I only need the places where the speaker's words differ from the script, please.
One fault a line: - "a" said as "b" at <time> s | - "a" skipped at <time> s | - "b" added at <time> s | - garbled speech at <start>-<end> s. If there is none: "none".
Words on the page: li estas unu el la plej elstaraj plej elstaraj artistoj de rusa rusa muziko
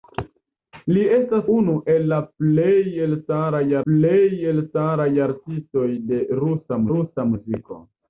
none